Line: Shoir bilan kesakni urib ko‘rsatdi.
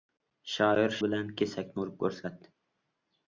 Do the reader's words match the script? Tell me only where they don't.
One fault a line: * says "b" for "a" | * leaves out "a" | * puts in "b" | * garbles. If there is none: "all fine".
all fine